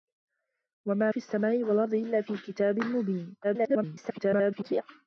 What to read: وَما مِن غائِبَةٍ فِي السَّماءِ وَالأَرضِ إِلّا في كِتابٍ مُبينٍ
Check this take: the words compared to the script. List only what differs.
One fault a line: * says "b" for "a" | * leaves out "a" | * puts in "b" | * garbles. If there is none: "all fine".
* leaves out "مِن غائِبَةٍ"
* garbles